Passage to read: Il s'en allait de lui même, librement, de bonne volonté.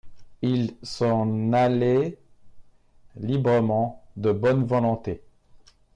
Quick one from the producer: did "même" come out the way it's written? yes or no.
no